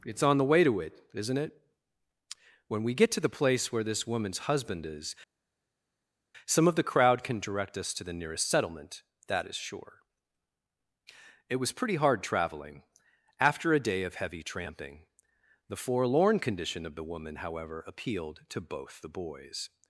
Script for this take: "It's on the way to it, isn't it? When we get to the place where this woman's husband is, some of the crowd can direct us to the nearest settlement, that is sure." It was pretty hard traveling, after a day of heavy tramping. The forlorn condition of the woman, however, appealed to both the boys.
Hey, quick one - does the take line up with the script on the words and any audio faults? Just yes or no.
yes